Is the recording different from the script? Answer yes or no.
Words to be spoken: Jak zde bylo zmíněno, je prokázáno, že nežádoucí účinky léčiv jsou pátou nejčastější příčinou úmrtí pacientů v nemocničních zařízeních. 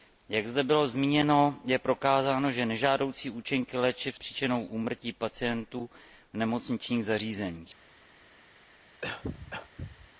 yes